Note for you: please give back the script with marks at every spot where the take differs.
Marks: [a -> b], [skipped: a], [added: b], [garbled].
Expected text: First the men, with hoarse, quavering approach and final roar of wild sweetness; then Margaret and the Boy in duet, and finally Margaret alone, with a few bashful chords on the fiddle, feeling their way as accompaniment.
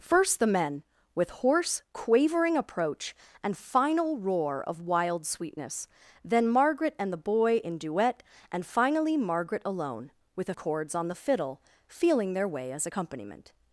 First the men, with hoarse, quavering approach and final roar of wild sweetness; then Margaret and the Boy in duet, and finally Margaret alone, with a [skipped: few bashful] chords on the fiddle, feeling their way as accompaniment.